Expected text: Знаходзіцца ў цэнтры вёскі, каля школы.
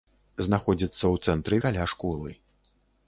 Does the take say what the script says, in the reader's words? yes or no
no